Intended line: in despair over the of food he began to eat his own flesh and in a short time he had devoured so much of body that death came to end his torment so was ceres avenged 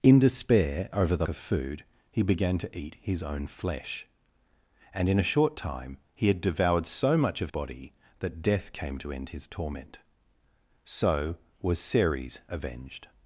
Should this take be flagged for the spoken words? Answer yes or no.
no